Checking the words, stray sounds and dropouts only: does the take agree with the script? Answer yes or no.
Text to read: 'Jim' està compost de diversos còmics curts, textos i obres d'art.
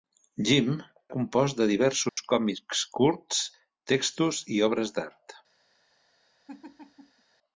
no